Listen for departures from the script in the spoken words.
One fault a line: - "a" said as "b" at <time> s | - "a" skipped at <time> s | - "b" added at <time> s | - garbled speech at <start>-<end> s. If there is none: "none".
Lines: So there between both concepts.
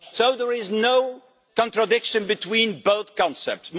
- "is no contradiction" added at 0.5 s